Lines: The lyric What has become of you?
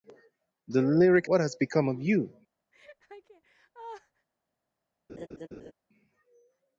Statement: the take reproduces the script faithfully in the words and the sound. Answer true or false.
false